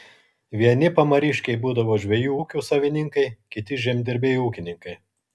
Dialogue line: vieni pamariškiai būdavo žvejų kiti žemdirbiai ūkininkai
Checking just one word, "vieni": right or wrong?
right